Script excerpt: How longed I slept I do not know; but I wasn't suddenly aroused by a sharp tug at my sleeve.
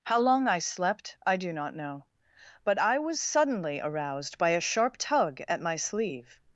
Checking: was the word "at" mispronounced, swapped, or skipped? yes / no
no